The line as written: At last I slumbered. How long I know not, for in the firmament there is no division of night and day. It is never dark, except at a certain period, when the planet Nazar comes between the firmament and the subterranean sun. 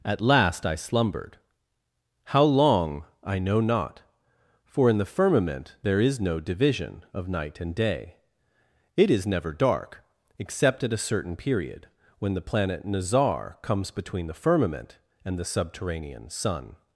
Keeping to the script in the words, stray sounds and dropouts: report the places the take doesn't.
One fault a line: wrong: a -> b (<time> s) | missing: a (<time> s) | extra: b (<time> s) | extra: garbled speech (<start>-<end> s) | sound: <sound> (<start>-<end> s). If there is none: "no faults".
no faults